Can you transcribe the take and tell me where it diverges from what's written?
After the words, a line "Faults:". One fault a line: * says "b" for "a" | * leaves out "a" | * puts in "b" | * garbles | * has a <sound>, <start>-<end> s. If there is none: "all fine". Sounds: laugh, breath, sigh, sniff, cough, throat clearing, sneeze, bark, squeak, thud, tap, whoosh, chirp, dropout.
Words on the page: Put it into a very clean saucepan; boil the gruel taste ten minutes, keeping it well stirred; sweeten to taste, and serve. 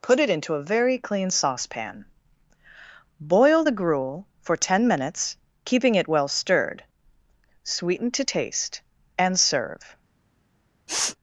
Put it into a very clean saucepan; boil the gruel for ten minutes, keeping it well stirred; sweeten to taste, and serve.
Faults:
* says "for" for "taste"
* has a sniff, 10.9-11.2 s